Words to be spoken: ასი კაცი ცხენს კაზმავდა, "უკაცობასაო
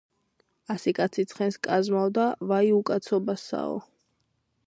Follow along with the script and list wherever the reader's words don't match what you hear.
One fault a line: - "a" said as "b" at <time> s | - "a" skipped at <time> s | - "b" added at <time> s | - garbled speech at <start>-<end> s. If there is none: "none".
- "ვაი" added at 2.5 s